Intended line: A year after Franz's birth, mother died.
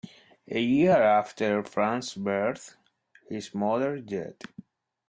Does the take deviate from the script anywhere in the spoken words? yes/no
yes